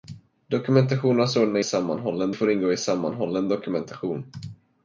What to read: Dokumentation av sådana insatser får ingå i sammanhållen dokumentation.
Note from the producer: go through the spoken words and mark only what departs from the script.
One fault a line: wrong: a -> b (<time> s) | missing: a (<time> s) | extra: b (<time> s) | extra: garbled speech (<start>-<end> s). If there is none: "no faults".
wrong: insatser -> sammanhållen (1.6 s)